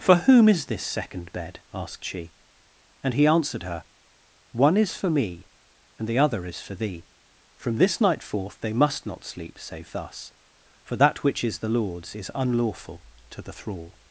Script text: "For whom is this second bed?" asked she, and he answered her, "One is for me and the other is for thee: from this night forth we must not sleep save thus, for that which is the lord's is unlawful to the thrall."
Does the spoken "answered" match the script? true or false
true